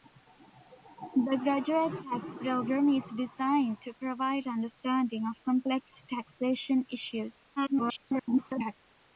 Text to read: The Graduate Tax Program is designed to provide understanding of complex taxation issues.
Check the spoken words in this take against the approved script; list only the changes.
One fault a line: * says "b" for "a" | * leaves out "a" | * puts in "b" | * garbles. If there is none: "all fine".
* garbles